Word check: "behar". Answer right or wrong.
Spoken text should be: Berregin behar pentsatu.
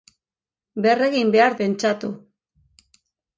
right